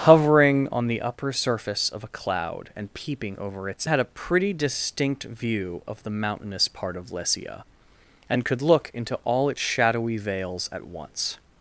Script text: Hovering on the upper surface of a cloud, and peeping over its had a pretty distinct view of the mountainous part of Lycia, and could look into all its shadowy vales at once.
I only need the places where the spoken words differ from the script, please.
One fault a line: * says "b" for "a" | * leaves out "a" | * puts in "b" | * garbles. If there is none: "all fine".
all fine